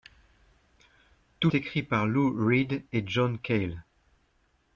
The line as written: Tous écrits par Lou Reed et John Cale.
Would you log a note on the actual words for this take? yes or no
no